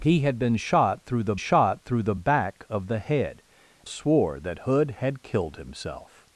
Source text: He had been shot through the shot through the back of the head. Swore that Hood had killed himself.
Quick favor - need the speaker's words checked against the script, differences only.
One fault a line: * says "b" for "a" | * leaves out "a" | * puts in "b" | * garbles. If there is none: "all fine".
all fine